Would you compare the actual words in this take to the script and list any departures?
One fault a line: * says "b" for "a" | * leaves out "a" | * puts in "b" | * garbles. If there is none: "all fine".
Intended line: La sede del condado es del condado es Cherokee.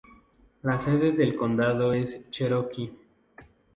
* leaves out "del condado es"